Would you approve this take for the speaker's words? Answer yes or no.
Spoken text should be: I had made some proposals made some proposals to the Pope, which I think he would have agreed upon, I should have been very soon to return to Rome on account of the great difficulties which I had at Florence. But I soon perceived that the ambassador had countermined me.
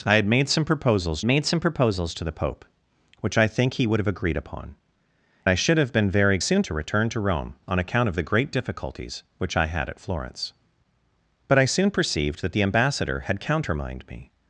yes